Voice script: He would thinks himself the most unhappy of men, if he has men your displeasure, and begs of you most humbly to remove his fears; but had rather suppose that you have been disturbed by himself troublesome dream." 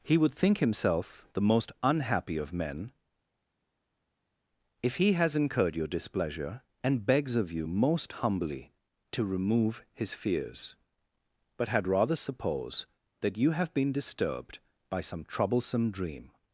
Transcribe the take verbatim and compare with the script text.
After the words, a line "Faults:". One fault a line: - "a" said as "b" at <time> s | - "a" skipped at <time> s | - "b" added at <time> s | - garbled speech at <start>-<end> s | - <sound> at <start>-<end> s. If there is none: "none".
He would think himself the most unhappy of men, if he has incurred your displeasure, and begs of you most humbly to remove his fears; but had rather suppose that you have been disturbed by some troublesome dream."
Faults:
- "thinks" said as "think" at 0.3 s
- "men" said as "incurred" at 5.4 s
- "himself" said as "some" at 15.0 s